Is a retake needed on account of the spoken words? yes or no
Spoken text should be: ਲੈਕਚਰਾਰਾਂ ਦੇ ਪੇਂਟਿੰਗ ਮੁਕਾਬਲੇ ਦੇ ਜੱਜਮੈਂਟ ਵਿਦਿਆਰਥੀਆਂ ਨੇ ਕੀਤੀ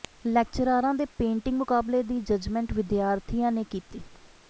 yes